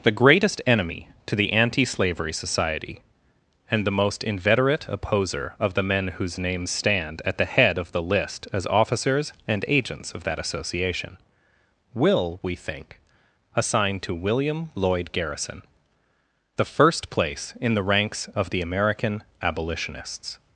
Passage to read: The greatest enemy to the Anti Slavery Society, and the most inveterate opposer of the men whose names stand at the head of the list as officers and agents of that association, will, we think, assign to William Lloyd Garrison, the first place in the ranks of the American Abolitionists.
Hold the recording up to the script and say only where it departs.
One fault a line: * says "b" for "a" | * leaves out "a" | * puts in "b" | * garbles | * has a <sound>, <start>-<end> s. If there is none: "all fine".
all fine